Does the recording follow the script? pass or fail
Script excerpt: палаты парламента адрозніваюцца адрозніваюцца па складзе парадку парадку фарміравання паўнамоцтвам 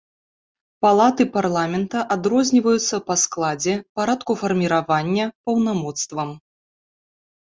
fail